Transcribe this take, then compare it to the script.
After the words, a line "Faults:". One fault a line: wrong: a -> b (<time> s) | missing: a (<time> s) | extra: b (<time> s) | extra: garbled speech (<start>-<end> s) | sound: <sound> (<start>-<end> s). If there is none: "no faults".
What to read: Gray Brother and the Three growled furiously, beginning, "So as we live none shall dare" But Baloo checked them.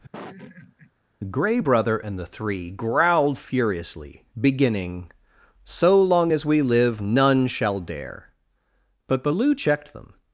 Gray Brother and the Three growled furiously, beginning, "So long as we live none shall dare" But Baloo checked them.
Faults:
sound: laugh (0.1-0.9 s)
extra: long (6.0 s)